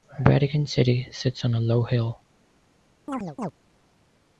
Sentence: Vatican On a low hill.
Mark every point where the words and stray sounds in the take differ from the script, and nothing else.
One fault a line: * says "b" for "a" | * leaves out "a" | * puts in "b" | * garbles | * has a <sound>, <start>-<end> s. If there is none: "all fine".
* puts in "City sits"
* has a chirp, 3.1-3.5 s